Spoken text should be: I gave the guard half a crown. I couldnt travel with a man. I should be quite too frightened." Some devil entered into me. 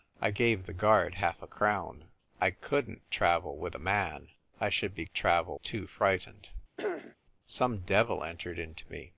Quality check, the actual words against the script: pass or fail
fail